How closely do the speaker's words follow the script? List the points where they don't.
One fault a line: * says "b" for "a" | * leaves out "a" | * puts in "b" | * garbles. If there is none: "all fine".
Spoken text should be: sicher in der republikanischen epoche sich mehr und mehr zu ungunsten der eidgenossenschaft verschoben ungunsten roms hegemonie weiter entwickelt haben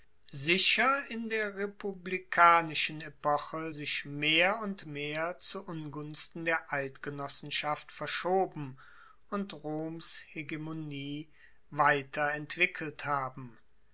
* says "und" for "ungunsten"